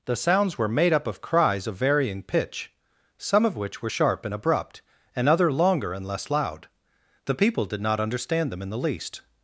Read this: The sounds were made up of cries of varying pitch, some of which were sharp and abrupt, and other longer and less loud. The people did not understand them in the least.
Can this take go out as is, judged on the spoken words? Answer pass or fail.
pass